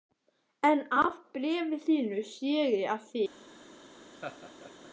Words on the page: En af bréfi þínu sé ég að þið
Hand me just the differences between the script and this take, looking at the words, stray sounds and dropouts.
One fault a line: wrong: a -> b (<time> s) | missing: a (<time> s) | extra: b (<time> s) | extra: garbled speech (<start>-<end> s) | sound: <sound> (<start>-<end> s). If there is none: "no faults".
sound: laugh (4.1-4.9 s)